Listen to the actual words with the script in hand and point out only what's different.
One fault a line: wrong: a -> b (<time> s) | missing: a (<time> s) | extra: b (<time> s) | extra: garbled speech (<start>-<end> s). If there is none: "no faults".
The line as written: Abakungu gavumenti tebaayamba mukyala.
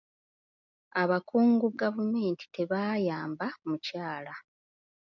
no faults